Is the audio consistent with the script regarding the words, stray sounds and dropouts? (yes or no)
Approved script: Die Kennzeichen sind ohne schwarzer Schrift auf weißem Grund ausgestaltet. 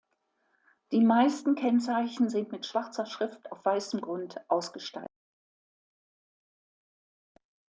no